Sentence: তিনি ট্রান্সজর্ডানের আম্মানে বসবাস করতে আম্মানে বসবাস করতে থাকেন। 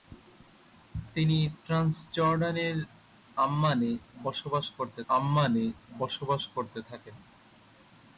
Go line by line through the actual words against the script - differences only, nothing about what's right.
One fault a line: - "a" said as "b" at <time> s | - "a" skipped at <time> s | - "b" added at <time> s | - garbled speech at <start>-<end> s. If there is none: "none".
none